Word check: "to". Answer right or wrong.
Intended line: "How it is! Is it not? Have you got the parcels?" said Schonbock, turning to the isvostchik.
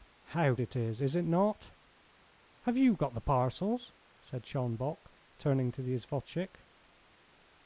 right